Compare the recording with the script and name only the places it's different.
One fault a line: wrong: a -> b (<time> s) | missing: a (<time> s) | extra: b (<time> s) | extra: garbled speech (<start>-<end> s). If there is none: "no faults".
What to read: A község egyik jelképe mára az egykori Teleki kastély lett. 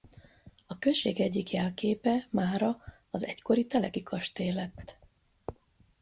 no faults